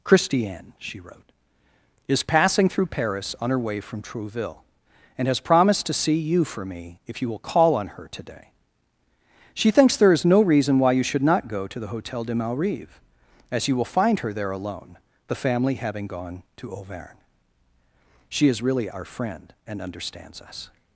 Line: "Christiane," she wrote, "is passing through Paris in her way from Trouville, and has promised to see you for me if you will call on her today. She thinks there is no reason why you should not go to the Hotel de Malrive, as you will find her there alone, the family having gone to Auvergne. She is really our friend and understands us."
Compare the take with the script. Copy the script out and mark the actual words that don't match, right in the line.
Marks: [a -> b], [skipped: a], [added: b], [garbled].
"Christiane," she wrote, "is passing through Paris [in -> on] her way from Trouville, and has promised to see you for me if you will call on her today. She thinks there is no reason why you should not go to the Hotel de Malrive, as you will find her there alone, the family having gone to Auvergne. She is really our friend and understands us."